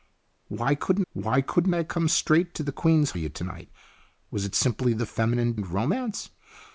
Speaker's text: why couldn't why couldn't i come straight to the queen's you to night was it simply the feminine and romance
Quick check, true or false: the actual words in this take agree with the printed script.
true